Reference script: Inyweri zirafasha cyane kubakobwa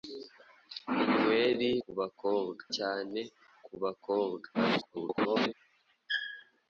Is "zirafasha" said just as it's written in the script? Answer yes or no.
no